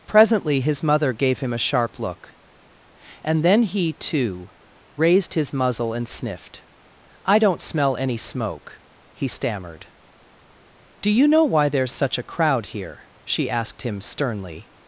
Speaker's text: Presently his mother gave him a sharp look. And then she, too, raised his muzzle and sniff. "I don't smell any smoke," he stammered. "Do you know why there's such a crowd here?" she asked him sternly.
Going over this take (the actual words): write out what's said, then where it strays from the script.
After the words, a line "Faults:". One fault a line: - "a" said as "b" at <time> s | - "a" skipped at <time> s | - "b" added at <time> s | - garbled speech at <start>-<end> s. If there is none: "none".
Presently his mother gave him a sharp look. And then he, too, raised his muzzle and sniffed. "I don't smell any smoke," he stammered. "Do you know why there's such a crowd here?" she asked him sternly.
Faults:
- "she" said as "he" at 3.6 s
- "sniff" said as "sniffed" at 6.1 s